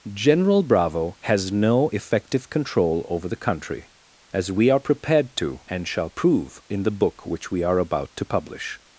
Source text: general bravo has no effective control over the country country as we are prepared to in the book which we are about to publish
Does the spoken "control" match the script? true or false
true